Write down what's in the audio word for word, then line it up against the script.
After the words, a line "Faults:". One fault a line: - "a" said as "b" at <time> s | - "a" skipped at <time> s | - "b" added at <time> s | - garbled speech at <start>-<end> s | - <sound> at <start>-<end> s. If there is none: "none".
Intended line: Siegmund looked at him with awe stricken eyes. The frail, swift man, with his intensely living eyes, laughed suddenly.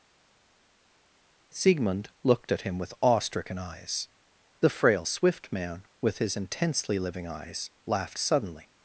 Siegmund looked at him with awe stricken eyes. The frail, swift man, with his intensely living eyes, laughed suddenly.
Faults:
none